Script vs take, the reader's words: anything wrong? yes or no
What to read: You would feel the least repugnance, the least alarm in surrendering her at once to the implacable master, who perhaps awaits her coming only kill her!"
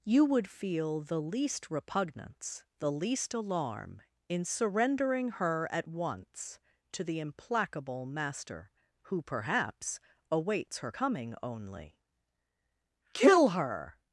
no